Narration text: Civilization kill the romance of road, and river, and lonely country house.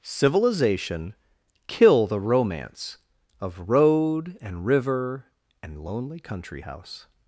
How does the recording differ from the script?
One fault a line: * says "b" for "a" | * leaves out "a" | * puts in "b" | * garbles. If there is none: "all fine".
all fine